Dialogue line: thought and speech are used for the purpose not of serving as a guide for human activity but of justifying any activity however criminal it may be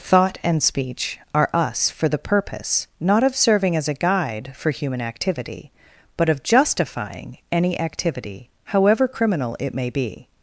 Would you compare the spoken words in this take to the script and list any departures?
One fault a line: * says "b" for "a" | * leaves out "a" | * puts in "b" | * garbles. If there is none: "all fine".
* says "us" for "used"